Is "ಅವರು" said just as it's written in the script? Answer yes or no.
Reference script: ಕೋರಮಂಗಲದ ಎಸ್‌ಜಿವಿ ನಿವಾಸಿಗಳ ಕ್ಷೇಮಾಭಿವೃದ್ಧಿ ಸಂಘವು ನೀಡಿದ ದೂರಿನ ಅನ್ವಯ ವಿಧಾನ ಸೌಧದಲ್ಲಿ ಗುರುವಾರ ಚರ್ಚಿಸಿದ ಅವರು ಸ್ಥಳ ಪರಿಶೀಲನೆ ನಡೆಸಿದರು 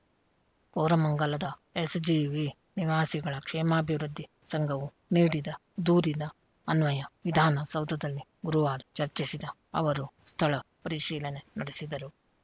yes